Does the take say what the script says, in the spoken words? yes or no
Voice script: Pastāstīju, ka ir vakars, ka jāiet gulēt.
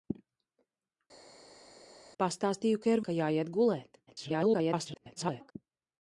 no